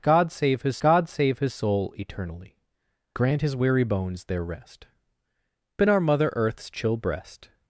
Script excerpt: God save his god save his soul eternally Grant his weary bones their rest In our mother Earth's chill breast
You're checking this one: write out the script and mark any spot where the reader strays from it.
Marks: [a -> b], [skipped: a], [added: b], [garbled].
God save his god save his soul eternally Grant his weary bones their rest In our mother Earth's chill breast